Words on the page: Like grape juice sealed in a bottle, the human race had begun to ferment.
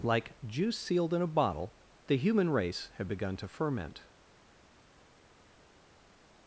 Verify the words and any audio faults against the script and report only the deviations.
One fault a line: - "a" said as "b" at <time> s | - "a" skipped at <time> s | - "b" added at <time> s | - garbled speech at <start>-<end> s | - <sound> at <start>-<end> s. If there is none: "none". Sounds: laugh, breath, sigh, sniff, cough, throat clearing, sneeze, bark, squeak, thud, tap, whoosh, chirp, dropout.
- "grape" skipped at 0.4 s